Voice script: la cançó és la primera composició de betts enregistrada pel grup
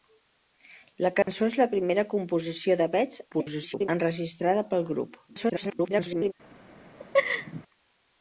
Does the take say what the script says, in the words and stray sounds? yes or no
no